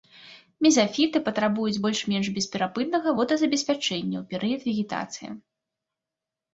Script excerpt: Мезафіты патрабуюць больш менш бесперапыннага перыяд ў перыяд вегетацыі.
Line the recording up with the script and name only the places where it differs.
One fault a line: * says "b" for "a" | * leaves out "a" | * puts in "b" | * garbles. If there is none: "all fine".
* says "водазабеспячэння" for "перыяд"